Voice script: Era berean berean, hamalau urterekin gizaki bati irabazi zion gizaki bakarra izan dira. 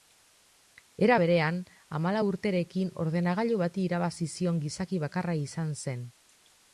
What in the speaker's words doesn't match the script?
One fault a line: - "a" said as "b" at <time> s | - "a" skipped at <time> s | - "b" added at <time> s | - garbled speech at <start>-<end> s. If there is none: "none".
- "berean" skipped at 1.6 s
- "gizaki" said as "ordenagailu" at 3.1 s
- "dira" said as "zen" at 5.9 s